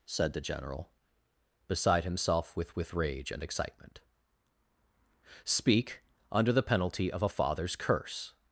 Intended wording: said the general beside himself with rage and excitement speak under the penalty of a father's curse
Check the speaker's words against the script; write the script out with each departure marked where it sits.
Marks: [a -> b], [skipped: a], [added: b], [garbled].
said the general beside himself with [added: with] rage and excitement speak under the penalty of a father's curse